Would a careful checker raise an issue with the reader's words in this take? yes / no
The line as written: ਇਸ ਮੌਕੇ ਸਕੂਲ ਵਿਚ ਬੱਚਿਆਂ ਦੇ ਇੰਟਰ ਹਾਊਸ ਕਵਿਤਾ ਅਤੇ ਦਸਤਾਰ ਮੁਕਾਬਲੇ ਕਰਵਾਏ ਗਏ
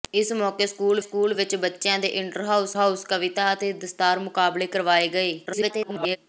yes